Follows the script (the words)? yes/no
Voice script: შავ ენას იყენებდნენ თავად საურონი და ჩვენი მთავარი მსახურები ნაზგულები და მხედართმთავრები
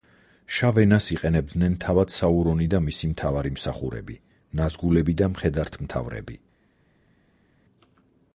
no